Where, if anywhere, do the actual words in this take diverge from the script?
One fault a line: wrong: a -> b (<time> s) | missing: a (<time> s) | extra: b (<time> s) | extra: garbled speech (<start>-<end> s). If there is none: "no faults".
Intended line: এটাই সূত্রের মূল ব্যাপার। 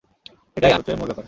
no faults